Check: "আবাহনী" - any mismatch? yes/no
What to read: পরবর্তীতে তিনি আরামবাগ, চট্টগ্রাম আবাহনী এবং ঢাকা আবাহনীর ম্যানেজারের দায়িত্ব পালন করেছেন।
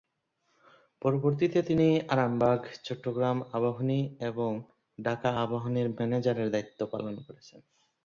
no